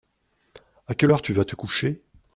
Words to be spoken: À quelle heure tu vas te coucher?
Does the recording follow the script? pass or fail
pass